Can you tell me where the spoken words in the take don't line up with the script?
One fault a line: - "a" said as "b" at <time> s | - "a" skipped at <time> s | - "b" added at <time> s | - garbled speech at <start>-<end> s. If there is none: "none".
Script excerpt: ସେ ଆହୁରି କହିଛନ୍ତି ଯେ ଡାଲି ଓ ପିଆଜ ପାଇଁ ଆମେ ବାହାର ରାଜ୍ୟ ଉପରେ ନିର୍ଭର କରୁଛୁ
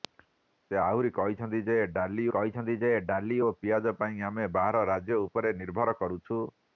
- "କହିଛନ୍ତି ଯେ ଡାଲି" added at 2.3 s